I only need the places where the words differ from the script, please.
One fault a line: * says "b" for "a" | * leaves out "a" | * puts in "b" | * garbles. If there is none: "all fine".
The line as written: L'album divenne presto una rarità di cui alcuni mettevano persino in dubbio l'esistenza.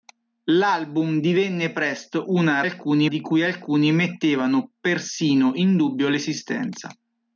* says "alcuni" for "rarità"